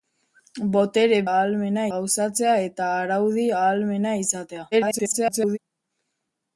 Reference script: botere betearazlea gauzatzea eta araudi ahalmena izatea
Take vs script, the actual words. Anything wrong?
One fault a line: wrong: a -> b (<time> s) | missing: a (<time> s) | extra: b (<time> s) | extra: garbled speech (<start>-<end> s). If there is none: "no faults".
wrong: betearazlea -> ahalmena (1.3 s)
extra: garbled speech (4.7-5.6 s)